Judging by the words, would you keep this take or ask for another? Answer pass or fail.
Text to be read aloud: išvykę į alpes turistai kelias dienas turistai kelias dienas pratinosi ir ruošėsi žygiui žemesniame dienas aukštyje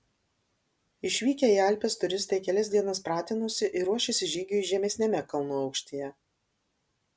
fail